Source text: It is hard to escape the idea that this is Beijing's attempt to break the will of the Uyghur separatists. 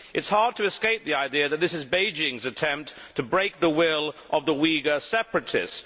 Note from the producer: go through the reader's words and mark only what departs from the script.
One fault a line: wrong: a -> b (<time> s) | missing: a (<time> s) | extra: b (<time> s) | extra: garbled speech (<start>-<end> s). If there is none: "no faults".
no faults